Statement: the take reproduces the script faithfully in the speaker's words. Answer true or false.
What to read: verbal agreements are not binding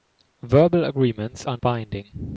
false